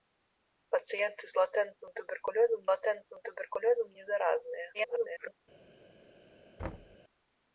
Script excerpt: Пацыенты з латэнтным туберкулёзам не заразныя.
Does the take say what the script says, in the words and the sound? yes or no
no